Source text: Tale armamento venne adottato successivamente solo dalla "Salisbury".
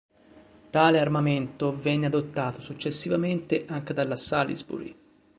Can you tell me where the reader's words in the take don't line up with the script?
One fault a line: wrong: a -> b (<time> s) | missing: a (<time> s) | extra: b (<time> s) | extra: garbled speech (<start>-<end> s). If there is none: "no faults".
wrong: solo -> anche (3.7 s)